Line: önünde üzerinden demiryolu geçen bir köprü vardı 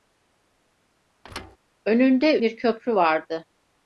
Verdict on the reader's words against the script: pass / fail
fail